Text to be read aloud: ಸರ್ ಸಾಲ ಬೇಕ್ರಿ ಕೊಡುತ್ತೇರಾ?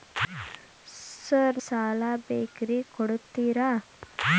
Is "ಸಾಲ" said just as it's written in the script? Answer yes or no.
yes